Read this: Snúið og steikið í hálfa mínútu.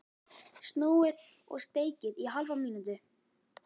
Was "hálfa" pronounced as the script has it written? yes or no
yes